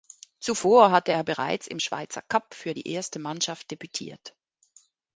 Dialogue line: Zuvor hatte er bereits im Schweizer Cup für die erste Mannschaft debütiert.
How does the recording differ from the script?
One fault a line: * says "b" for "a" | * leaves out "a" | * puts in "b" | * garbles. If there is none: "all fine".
all fine